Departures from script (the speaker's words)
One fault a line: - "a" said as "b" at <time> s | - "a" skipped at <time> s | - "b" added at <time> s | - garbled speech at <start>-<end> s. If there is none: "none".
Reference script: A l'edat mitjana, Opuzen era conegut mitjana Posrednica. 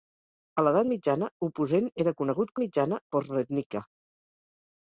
none